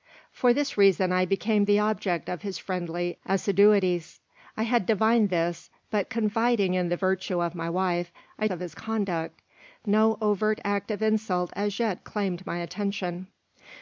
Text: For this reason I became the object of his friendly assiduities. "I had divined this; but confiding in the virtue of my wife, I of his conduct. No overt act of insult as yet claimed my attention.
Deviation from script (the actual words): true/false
false